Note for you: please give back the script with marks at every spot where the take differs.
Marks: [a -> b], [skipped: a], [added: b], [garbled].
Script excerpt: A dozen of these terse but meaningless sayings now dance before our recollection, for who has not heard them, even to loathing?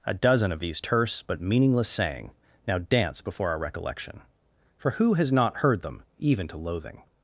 A dozen of these terse but meaningless [sayings -> saying] now dance before our recollection, for who has not heard them, even to loathing?